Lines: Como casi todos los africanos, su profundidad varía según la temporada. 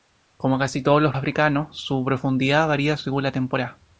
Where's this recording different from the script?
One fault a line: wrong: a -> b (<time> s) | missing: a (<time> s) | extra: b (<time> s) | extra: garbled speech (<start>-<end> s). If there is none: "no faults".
no faults